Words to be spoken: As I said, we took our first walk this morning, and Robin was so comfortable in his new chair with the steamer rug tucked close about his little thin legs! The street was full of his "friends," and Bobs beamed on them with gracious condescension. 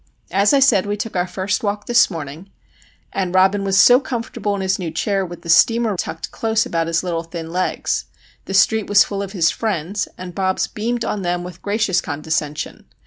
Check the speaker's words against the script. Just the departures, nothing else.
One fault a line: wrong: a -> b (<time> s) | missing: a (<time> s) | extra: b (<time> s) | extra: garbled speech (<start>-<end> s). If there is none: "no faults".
missing: rug (5.9 s)